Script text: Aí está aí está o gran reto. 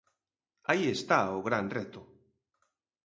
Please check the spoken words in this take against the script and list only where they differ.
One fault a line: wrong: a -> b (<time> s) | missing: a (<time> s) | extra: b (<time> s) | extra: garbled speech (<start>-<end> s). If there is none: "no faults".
missing: aí está (1.2 s)